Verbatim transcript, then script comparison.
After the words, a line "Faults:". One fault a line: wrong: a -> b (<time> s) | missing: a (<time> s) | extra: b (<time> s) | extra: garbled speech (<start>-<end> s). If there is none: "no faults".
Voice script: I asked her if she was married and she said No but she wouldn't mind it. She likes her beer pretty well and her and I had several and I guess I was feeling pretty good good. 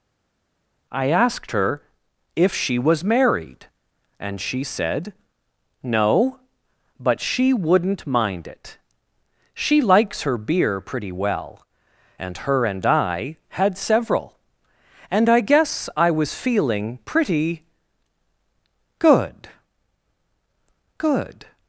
I asked her if she was married and she said No but she wouldn't mind it. She likes her beer pretty well and her and I had several and I guess I was feeling pretty good good.
Faults:
no faults